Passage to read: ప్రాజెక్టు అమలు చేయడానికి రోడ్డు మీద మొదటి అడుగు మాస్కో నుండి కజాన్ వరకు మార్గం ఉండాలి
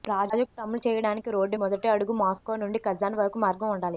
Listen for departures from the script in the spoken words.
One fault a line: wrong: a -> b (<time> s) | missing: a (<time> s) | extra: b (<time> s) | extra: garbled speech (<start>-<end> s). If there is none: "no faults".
missing: మీద (1.6 s)